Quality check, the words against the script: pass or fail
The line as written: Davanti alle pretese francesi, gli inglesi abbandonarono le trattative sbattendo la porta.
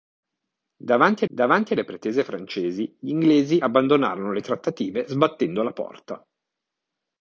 fail